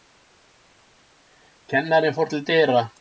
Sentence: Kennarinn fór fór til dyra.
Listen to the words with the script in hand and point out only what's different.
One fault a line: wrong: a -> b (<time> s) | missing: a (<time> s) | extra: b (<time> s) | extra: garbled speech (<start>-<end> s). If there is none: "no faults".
missing: fór (2.3 s)